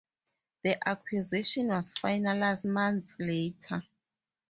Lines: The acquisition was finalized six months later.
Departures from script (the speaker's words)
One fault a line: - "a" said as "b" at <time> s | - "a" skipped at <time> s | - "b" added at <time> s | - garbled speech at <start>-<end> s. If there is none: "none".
- "six" skipped at 2.6 s